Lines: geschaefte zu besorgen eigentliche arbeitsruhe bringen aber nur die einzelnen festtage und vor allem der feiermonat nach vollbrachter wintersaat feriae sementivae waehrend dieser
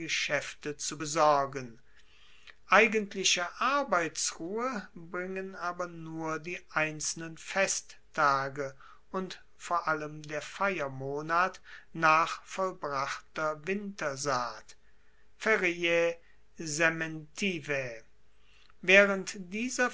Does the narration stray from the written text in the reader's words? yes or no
no